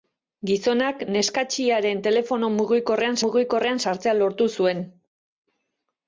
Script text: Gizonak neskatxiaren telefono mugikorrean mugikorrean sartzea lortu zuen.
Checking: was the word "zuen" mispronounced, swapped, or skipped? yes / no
no